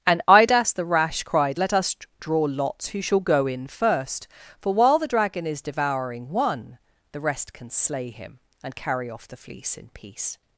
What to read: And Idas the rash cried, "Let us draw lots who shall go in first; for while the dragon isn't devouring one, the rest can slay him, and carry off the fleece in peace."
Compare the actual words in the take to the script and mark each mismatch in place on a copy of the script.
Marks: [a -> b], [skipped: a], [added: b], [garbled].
And Idas the rash cried, "Let us draw lots who shall go in first; for while the dragon [isn't -> is] devouring one, the rest can slay him, and carry off the fleece in peace."